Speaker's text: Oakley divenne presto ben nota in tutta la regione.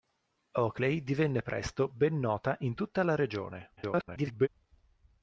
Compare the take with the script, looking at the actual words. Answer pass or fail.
fail